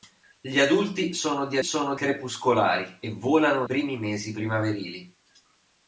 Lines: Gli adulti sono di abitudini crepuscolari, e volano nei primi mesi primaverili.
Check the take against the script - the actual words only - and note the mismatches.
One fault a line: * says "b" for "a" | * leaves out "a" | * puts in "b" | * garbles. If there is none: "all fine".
* says "sono" for "abitudini"
* leaves out "nei"